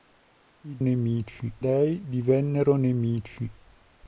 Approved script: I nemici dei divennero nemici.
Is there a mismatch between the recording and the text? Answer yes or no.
no